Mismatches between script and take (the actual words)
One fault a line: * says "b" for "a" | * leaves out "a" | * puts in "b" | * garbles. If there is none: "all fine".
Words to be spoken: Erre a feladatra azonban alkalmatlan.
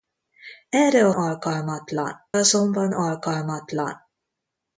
* says "alkalmatlan" for "feladatra"